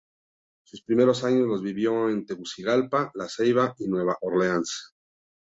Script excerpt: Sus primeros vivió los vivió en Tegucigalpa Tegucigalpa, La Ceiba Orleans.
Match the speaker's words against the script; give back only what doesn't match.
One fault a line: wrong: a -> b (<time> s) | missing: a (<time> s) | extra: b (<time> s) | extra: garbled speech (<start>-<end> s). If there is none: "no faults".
wrong: vivió -> años (1.2 s)
missing: Tegucigalpa (3.1 s)
extra: y Nueva (3.8 s)